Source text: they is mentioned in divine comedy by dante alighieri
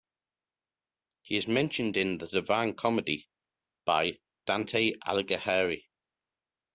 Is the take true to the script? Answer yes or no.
no